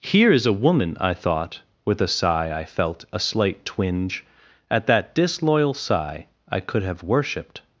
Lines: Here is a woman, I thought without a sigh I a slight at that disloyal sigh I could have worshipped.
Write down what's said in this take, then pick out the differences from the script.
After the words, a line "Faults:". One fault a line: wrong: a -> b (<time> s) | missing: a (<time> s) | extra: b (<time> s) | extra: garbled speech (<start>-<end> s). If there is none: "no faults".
Here is a woman, I thought with a sigh I felt a slight twinge at that disloyal sigh I could have worshipped.
Faults:
wrong: without -> with (1.9 s)
extra: felt (2.6 s)
extra: twinge (3.6 s)